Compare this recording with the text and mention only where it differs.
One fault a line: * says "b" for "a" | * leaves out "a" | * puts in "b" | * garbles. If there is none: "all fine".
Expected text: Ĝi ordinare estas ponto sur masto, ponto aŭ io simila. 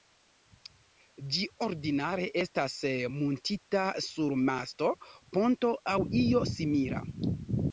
* says "muntita" for "ponto"